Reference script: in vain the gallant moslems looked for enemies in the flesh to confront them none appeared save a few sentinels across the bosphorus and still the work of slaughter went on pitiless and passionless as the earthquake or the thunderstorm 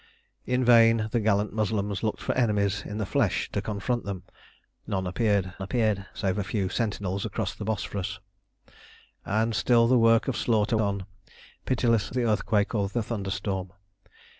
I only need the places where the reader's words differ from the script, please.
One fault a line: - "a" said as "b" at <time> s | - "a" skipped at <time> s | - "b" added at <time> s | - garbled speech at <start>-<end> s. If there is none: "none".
- "appeared" added at 5.6 s
- "went" skipped at 10.8 s
- "and passionless as" skipped at 12.1 s